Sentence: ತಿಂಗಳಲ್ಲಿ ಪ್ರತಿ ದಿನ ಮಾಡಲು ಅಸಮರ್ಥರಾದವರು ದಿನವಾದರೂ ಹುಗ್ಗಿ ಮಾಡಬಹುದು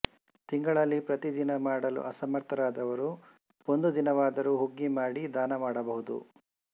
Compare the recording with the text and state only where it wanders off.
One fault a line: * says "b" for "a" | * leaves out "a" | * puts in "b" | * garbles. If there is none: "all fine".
* puts in "ಒಂದು"
* puts in "ಮಾಡಿ ದಾನ"